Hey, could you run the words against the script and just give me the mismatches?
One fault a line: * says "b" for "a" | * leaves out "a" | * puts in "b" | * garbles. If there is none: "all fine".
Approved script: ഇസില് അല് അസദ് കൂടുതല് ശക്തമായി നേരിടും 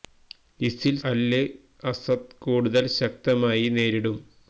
all fine